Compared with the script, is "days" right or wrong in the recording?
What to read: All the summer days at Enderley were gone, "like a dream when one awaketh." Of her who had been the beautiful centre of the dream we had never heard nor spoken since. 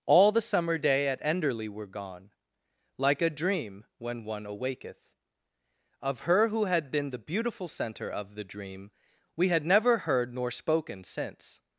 wrong